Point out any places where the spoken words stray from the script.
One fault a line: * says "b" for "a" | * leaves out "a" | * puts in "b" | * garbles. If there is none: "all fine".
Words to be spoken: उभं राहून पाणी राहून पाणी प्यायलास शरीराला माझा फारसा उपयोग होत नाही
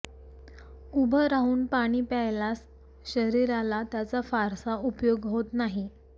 * leaves out "राहून पाणी"
* says "त्याचा" for "माझा"